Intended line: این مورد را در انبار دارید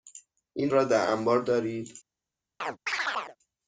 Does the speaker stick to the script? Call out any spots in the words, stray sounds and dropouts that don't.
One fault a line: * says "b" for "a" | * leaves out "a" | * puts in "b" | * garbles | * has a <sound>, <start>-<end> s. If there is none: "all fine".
* leaves out "مورد"
* has a chirp, 2.6-3.4 s